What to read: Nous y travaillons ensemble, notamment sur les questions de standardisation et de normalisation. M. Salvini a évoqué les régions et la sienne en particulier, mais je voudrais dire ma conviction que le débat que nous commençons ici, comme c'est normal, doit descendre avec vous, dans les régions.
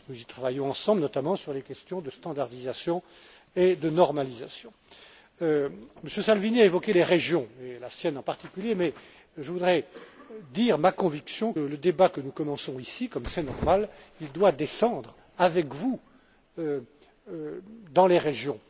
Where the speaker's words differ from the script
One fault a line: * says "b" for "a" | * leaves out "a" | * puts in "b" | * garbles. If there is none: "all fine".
* leaves out "que"